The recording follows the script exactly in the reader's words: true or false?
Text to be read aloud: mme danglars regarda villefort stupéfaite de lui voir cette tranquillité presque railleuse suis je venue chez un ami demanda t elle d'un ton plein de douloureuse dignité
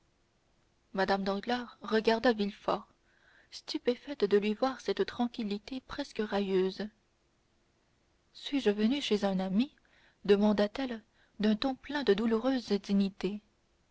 true